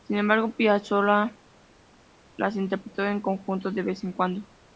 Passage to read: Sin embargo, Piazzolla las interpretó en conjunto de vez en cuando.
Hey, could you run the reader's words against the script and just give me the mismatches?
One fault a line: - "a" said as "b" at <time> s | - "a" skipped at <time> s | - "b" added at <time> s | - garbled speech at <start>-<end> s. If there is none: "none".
none